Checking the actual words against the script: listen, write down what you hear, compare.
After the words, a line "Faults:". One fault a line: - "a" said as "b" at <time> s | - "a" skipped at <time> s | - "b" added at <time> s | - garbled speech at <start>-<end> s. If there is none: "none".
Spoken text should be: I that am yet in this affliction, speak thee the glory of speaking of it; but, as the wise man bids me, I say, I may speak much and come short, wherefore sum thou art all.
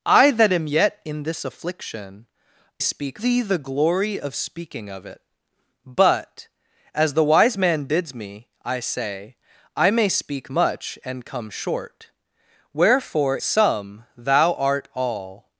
I that am yet in this affliction, speak thee the glory of speaking of it; but, as the wise man bids me, I say, I may speak much and come short, wherefore sum thou art all.
Faults:
none